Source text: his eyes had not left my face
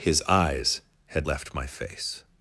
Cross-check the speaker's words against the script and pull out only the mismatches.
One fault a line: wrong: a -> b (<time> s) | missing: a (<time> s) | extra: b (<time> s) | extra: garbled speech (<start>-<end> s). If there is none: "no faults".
missing: not (1.3 s)